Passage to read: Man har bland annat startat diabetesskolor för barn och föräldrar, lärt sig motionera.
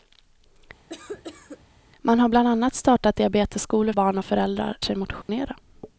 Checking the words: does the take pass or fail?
fail